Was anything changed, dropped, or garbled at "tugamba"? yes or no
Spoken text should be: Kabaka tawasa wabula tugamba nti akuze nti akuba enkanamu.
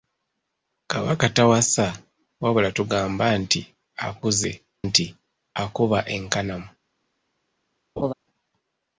no